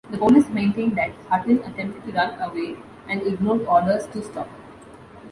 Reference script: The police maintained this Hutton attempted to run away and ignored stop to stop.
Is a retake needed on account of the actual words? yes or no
yes